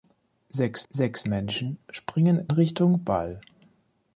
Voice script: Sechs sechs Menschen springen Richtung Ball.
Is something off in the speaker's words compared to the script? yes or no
no